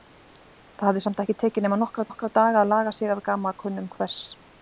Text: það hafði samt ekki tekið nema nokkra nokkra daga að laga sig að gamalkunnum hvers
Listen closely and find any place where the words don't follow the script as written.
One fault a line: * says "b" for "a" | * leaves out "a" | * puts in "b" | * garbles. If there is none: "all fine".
all fine